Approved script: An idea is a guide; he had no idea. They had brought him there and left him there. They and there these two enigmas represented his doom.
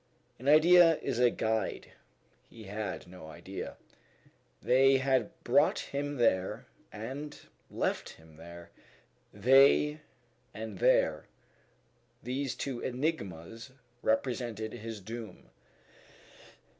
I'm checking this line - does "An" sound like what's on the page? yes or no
yes